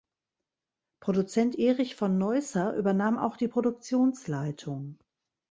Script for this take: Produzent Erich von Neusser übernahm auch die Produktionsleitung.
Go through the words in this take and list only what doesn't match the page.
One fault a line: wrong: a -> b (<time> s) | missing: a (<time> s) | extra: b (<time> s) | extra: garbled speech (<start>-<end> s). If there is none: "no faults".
no faults